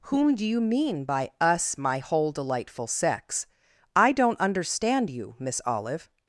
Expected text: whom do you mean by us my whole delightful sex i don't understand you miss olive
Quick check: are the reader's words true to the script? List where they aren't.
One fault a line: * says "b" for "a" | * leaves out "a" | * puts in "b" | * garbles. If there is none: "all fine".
all fine